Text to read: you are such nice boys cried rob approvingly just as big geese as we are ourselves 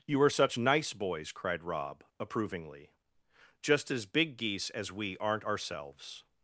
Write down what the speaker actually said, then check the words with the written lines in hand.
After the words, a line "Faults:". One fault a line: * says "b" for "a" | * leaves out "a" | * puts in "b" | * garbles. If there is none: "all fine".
you are such nice boys cried rob approvingly just as big geese as we aren't ourselves
Faults:
* says "aren't" for "are"